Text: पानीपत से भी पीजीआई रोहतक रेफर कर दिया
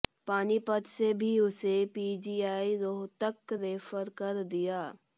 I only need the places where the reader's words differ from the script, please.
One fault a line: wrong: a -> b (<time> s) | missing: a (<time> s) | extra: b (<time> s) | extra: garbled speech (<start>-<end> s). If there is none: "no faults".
extra: उसे (1.4 s)